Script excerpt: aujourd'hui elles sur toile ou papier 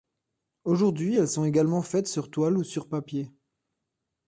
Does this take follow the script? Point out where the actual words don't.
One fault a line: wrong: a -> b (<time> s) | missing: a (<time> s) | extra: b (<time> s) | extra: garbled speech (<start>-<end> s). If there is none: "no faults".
extra: sont également faites (1.3 s)
extra: sur (2.6 s)